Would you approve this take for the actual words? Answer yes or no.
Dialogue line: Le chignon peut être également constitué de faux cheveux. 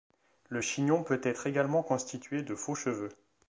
yes